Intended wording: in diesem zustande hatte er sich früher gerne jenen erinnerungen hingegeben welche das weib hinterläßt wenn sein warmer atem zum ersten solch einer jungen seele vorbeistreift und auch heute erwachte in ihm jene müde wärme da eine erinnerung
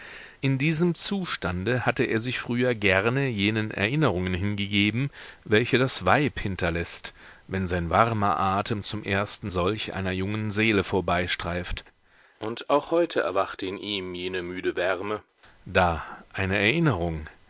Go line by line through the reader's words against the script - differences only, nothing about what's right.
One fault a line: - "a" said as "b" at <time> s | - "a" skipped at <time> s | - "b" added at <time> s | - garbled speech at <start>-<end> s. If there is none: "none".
none